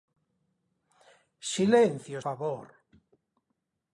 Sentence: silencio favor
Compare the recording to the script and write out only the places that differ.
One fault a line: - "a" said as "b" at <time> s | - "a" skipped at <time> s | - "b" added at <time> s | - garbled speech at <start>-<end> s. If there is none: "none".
none